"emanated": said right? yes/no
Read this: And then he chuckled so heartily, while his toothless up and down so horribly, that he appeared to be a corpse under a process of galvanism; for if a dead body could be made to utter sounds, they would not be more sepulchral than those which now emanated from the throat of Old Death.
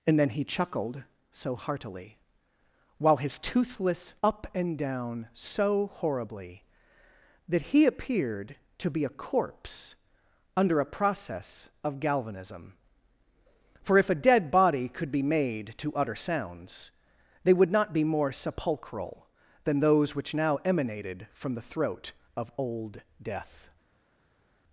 yes